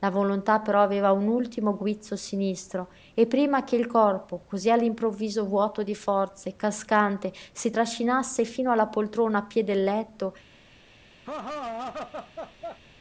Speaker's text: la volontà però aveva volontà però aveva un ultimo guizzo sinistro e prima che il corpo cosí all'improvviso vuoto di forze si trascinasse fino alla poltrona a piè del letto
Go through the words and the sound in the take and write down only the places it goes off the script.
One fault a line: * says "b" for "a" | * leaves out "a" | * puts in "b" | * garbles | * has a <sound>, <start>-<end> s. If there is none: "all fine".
* leaves out "volontà però aveva"
* puts in "cascante"
* has a laugh, 11.3-12.8 s